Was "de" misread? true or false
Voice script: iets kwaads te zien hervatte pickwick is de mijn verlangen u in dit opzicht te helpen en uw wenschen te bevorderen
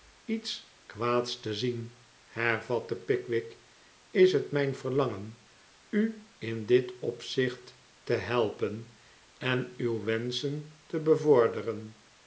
true